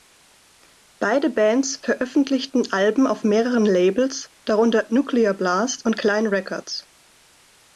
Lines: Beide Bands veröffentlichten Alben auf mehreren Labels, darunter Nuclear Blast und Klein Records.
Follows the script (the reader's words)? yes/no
yes